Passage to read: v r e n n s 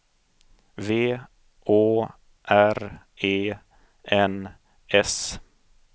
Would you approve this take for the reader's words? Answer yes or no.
no